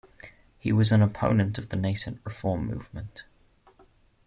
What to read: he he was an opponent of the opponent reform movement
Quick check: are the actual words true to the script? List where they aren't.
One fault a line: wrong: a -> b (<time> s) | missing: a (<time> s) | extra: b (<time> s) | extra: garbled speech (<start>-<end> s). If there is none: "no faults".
missing: he (0.7 s)
wrong: opponent -> nascent (1.8 s)